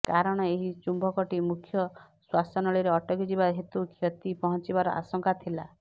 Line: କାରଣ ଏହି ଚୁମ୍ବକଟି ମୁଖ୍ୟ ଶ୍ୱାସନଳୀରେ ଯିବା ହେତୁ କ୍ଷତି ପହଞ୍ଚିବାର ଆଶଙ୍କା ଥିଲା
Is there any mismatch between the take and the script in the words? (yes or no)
yes